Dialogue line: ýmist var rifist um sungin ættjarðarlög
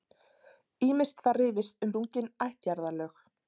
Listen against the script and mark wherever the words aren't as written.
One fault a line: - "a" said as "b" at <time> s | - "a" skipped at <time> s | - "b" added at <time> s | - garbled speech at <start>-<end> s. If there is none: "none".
none